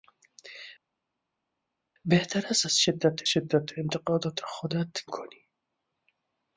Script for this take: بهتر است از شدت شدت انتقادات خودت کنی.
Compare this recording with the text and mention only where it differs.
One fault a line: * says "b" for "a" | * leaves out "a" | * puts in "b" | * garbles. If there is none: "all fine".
all fine